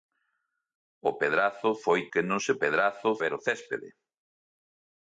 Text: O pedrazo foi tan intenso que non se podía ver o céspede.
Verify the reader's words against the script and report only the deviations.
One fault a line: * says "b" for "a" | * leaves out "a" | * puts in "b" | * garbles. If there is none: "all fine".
* leaves out "tan intenso"
* says "pedrazo" for "podía"